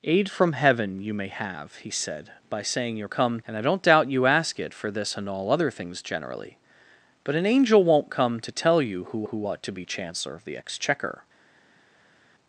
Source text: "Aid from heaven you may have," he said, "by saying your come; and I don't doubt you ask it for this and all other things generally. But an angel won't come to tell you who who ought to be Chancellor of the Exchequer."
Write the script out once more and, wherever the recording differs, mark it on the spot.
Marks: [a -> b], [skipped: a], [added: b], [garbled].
"Aid from heaven you may have," he said, "by saying your come; and I don't doubt you ask it for this and all other things generally. But an angel won't come to tell you who who ought to be Chancellor of the Exchequer."